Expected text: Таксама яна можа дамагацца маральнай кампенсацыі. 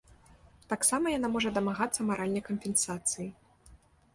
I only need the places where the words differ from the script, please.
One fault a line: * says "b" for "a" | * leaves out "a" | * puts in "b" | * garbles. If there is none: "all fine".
all fine